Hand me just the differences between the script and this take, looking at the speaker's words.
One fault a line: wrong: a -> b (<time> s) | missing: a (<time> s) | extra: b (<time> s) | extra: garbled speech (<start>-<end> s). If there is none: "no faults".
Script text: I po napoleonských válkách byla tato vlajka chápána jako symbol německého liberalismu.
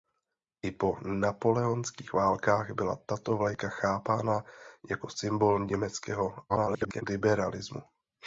extra: garbled speech (6.5-7.0 s)